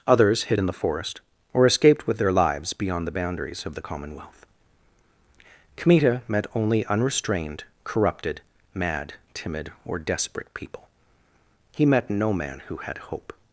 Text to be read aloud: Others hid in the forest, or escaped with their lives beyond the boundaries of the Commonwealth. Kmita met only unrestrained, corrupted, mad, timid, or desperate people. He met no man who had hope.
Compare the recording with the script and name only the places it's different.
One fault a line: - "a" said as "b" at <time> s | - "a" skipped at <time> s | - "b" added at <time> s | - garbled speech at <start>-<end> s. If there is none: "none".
none